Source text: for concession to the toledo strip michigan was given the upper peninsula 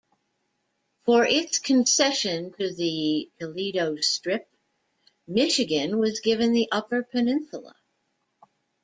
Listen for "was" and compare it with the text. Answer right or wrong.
right